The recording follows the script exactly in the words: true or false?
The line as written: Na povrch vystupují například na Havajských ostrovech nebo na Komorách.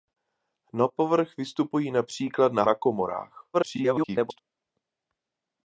false